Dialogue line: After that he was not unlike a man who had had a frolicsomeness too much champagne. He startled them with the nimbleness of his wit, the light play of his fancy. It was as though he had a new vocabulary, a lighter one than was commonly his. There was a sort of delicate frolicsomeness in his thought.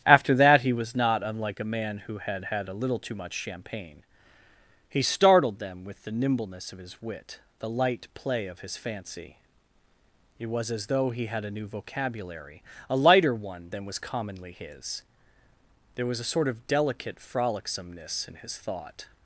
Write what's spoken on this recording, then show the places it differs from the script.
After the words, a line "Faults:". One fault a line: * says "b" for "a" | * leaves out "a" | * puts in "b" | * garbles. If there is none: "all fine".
After that he was not unlike a man who had had a little too much champagne. He startled them with the nimbleness of his wit, the light play of his fancy. It was as though he had a new vocabulary, a lighter one than was commonly his. There was a sort of delicate frolicsomeness in his thought.
Faults:
* says "little" for "frolicsomeness"